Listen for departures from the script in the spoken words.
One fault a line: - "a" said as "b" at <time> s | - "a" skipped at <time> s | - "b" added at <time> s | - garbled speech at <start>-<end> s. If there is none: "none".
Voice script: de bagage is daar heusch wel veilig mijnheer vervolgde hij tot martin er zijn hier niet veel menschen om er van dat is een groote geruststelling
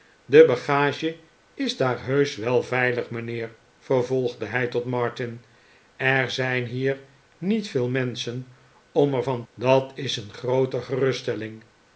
none